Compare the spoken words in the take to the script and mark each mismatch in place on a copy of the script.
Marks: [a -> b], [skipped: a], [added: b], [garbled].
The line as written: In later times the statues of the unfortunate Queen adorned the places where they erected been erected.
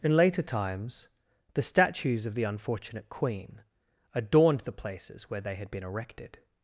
In later times the statues of the unfortunate Queen adorned the places where they [erected -> had] been erected.